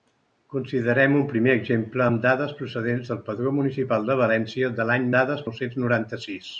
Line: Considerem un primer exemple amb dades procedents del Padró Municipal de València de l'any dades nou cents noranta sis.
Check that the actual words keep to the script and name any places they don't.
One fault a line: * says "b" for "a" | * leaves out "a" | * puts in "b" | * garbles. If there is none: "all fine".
all fine